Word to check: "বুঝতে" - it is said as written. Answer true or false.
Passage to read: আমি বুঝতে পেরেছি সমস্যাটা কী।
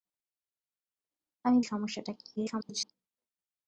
false